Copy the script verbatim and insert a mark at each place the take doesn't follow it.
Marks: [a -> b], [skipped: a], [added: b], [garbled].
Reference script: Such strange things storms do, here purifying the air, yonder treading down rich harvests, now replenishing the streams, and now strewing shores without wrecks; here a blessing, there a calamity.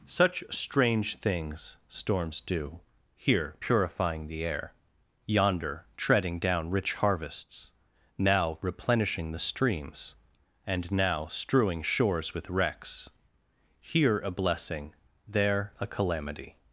Such strange things storms do, here purifying the air, yonder treading down rich harvests, now replenishing the streams, and now strewing shores [without -> with] wrecks; here a blessing, there a calamity.